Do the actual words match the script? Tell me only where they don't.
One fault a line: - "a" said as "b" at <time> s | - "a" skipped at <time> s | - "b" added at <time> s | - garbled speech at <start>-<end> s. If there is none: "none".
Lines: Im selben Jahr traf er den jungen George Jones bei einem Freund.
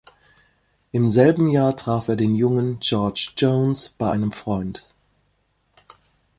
none